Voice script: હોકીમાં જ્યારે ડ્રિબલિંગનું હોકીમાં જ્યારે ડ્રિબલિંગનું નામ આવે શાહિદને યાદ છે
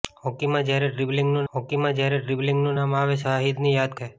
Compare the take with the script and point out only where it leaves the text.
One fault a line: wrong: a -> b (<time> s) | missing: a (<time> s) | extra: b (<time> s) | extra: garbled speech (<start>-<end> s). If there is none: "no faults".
no faults